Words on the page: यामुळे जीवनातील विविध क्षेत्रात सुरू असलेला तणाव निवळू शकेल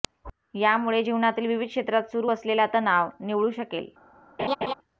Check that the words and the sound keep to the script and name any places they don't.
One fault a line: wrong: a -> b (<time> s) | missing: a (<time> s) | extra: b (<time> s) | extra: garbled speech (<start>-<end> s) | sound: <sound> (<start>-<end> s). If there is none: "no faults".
sound: laugh (4.4-4.7 s)